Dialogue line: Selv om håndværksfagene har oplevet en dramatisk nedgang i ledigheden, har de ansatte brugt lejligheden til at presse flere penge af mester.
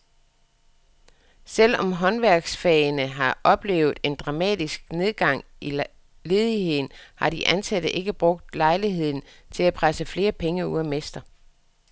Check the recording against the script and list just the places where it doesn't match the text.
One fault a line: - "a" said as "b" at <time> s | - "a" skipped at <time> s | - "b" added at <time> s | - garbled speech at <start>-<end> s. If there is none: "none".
- "ikke" added at 7.9 s
- "ud" added at 10.7 s